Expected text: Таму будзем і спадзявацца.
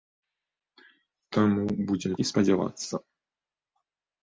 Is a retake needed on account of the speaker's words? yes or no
no